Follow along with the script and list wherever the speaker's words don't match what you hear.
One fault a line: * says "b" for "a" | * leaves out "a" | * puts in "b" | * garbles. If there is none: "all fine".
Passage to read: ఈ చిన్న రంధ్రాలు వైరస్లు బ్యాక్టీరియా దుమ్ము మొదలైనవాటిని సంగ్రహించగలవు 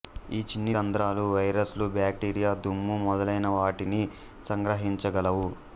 all fine